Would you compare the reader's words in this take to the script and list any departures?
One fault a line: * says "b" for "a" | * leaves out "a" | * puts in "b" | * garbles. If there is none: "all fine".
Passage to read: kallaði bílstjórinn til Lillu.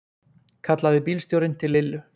all fine